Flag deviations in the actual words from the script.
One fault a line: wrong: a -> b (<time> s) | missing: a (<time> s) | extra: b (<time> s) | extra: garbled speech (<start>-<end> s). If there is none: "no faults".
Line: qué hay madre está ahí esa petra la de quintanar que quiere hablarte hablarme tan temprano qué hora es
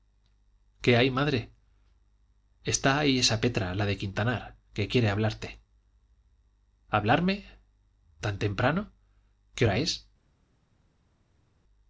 no faults